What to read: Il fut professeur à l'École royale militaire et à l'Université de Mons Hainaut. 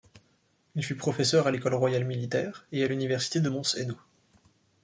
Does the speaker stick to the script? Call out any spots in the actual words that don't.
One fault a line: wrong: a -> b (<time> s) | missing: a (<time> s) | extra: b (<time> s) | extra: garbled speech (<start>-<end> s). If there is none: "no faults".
no faults